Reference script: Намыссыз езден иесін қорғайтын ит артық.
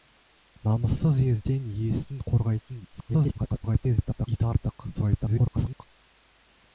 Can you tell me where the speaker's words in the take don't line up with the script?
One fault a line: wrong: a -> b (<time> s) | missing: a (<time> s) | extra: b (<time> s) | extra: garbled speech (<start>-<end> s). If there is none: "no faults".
extra: garbled speech (2.9-4.3 s)
extra: garbled speech (4.9-5.8 s)